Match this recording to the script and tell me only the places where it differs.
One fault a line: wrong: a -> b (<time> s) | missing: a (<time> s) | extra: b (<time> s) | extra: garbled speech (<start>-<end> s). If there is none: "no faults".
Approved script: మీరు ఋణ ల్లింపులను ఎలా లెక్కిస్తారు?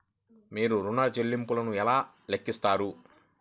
no faults